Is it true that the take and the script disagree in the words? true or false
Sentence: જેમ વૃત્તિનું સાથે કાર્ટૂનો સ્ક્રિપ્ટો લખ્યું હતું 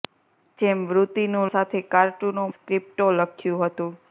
false